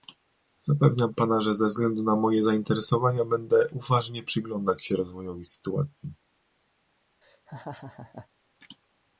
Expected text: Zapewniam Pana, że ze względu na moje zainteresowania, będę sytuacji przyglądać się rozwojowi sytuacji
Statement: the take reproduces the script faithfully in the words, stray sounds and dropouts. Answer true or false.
false